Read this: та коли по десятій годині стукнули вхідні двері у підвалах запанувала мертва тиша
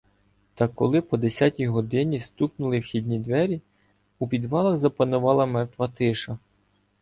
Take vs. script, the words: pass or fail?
pass